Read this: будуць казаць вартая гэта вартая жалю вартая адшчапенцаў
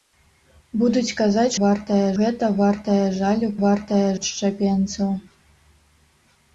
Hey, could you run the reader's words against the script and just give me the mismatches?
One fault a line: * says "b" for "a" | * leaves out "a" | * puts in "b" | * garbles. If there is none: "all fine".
all fine